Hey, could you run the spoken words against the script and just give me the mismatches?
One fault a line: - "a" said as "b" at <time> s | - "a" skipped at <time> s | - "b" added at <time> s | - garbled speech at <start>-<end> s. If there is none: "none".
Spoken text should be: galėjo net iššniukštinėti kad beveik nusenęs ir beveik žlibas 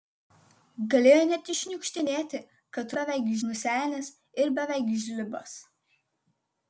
none